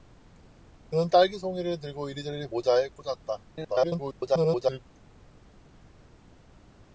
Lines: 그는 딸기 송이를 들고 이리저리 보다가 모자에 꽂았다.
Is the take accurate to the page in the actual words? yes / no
no